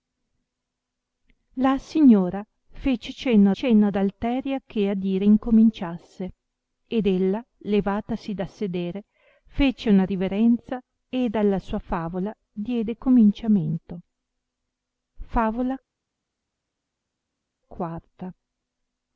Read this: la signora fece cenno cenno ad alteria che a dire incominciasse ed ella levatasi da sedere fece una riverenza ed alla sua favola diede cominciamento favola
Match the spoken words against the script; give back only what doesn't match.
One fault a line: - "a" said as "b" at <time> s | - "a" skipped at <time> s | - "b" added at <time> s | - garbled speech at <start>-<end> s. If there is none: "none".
none